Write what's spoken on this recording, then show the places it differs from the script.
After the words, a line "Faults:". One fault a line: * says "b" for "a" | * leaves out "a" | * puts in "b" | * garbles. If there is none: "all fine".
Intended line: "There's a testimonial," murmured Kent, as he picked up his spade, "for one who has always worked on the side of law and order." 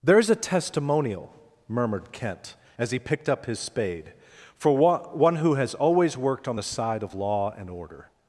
"There's a testimonial," murmured Kent, as he picked up his spade, "for one who has always worked on the side of law and order."
Faults:
all fine